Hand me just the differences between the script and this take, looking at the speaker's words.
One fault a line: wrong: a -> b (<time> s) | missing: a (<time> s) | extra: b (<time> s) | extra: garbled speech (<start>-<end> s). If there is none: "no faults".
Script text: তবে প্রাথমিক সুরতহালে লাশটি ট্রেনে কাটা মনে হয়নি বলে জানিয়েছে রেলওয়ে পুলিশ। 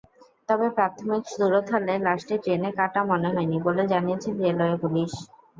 no faults